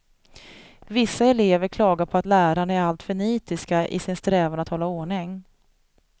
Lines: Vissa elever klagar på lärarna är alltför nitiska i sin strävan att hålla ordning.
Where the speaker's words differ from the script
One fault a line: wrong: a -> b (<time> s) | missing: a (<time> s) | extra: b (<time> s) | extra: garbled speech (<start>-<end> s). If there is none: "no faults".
extra: att (2.2 s)